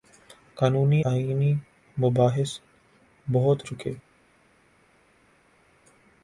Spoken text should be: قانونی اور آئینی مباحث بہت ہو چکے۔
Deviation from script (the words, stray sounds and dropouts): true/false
true